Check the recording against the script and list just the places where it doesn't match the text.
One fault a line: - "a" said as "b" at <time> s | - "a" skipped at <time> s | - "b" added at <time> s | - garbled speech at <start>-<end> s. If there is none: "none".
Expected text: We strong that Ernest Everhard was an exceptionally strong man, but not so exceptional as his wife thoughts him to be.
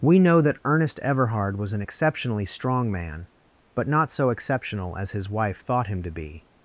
- "strong" said as "know" at 0.2 s
- "thoughts" said as "thought" at 5.6 s